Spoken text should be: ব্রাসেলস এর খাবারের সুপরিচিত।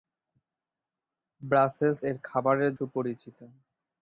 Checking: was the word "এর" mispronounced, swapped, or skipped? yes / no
no